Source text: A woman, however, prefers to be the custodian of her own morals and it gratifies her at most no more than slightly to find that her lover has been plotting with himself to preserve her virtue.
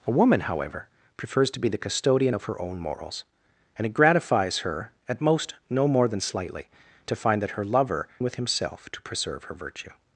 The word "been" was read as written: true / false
false